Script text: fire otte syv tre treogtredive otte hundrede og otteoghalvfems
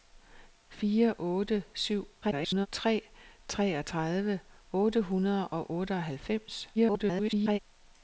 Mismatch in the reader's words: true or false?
true